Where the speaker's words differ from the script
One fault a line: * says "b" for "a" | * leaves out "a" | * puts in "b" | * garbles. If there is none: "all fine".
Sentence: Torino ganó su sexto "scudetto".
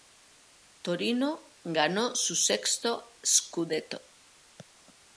all fine